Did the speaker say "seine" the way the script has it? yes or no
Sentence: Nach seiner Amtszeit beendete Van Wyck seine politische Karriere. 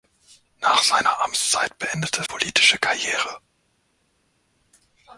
no